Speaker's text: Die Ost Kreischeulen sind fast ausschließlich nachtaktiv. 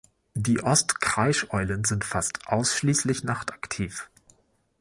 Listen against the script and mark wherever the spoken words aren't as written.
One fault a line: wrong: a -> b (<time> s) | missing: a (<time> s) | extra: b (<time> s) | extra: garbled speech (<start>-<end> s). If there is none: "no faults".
no faults